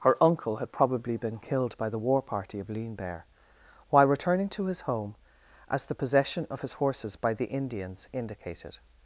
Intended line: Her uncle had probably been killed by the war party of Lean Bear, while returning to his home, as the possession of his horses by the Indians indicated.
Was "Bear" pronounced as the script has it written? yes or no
yes